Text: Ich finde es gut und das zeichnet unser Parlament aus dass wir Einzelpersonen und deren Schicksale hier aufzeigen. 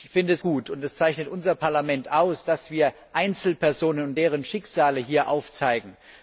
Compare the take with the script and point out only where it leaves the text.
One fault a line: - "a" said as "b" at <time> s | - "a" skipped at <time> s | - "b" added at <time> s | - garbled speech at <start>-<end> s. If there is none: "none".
none